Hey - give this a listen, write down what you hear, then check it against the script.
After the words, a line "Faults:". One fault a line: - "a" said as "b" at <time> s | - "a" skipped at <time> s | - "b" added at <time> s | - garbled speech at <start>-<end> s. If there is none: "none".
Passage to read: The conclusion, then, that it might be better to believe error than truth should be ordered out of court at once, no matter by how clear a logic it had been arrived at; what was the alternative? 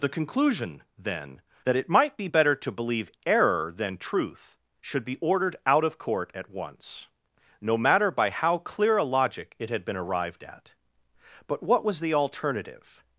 The conclusion, then, that it might be better to believe error than truth should be ordered out of court at once, no matter by how clear a logic it had been arrived at; but what was the alternative?
Faults:
- "but" added at 11.5 s